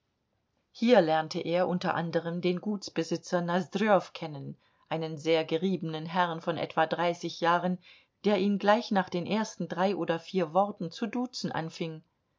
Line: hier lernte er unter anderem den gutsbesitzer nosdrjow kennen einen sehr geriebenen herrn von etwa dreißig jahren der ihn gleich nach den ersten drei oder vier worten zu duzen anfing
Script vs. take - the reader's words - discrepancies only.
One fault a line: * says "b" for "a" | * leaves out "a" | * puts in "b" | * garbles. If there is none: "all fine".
all fine